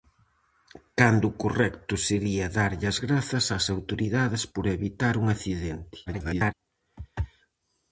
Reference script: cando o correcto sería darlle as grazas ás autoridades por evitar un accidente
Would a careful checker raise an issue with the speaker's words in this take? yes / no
yes